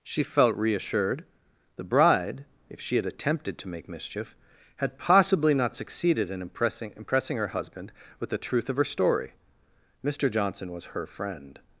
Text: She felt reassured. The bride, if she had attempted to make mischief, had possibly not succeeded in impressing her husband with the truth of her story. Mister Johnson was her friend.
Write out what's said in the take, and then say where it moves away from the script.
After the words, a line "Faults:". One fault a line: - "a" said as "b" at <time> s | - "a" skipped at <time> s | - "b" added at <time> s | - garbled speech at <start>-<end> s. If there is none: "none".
She felt reassured. The bride, if she had attempted to make mischief, had possibly not succeeded in impressing impressing her husband with the truth of her story. Mister Johnson was her friend.
Faults:
- "impressing" added at 7.0 s